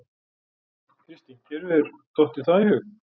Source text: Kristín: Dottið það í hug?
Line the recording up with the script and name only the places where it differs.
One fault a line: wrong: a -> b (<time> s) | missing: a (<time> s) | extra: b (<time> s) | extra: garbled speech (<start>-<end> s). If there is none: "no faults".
extra: Þér hefur (1.5 s)